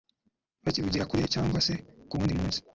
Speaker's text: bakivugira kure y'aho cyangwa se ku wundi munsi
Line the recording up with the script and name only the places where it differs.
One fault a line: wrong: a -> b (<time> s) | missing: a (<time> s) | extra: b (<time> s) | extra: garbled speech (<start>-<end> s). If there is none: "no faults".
missing: y'aho (1.2 s)